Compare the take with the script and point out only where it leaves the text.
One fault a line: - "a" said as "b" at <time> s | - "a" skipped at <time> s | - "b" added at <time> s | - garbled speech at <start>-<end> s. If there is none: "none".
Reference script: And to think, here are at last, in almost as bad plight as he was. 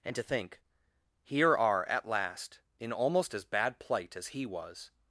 none